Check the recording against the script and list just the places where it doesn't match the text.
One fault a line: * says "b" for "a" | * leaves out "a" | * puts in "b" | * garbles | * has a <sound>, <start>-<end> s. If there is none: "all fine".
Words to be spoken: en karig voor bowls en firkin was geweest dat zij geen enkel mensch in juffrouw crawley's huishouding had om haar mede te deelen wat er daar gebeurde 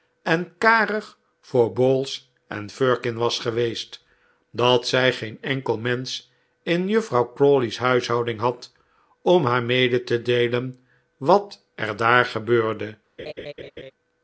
* has a laugh, 13.2-13.9 s